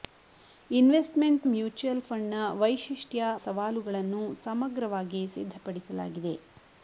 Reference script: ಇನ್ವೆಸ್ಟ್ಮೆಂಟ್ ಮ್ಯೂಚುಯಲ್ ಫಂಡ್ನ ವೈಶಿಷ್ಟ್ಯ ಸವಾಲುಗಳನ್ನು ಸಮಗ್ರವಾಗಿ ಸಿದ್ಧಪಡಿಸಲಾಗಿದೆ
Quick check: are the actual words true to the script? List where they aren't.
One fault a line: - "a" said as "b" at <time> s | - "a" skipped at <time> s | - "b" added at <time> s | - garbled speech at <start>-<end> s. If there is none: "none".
none